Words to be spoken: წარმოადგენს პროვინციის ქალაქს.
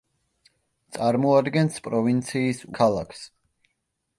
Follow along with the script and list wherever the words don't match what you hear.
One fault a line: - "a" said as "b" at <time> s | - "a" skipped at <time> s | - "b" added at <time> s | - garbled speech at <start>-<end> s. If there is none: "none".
none